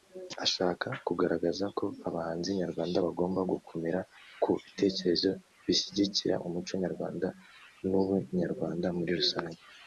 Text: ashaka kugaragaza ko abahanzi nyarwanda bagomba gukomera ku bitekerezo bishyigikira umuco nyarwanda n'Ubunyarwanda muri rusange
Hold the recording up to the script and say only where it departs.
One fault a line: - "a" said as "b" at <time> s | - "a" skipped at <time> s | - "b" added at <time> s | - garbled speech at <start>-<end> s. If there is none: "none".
none